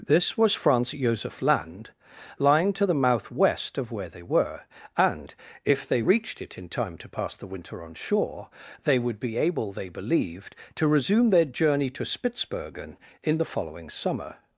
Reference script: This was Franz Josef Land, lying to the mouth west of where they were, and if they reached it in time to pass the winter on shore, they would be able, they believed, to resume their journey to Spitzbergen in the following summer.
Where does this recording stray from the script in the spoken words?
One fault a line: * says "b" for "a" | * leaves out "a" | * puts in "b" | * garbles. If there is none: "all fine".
all fine